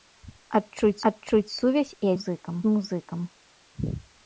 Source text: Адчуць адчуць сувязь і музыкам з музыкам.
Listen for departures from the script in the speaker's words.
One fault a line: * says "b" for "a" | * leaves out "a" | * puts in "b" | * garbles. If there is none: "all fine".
all fine